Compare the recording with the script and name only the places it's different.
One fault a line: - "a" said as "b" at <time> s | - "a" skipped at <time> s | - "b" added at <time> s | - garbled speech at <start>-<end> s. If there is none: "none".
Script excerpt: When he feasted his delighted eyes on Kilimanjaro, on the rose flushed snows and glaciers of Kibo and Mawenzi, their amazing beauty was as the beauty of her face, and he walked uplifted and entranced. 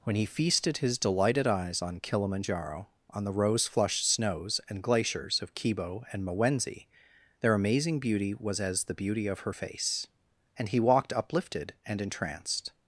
none